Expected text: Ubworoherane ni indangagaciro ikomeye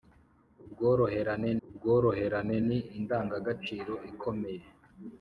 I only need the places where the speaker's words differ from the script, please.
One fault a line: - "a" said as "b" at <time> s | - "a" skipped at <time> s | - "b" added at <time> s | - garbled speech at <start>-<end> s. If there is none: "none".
- "ubworoherane" added at 1.7 s